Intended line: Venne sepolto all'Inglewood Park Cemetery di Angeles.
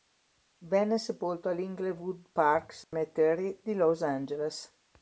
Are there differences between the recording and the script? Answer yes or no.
yes